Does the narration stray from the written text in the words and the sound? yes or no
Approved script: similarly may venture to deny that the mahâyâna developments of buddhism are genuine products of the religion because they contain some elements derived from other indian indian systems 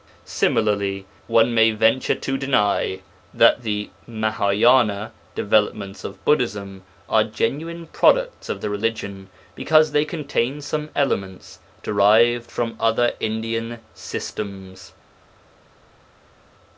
yes